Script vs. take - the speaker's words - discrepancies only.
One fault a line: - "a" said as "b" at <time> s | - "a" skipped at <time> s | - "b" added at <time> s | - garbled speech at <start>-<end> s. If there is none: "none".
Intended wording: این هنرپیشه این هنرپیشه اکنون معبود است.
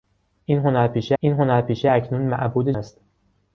none